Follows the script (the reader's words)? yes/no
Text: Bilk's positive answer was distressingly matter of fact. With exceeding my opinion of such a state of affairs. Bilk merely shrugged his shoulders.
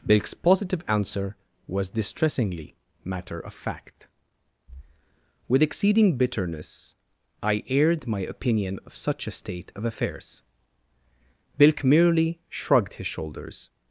no